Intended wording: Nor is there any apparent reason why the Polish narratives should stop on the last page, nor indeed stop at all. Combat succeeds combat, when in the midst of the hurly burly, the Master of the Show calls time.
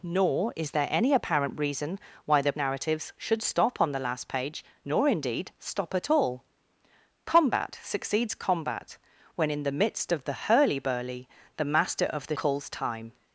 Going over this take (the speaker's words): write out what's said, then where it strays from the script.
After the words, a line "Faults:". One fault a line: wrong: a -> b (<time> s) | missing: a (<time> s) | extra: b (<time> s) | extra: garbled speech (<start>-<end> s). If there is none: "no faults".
Nor is there any apparent reason why the Narratives should stop on the last page, nor indeed stop at all. Combat succeeds combat, when in the midst of the hurly burly, the Master of the Calls time.
Faults:
missing: Polish (2.5 s)
missing: Show (12.4 s)